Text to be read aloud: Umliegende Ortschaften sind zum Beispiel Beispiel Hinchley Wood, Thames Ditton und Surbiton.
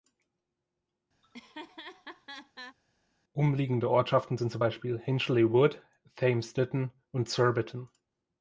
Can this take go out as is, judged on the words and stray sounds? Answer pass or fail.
fail